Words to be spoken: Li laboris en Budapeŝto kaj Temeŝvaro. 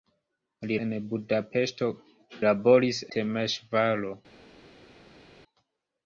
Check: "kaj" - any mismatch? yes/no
yes